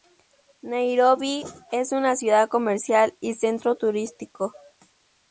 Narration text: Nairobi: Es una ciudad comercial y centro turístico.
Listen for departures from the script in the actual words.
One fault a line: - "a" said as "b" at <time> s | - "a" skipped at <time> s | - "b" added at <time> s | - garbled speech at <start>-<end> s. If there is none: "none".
none